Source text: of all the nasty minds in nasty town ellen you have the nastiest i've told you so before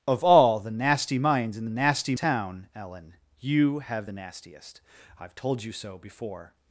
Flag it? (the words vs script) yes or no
no